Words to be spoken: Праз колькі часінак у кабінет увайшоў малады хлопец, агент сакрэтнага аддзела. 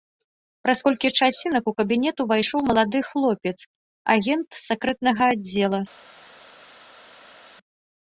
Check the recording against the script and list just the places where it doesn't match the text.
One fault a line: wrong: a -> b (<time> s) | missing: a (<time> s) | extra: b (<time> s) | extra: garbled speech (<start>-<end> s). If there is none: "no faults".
no faults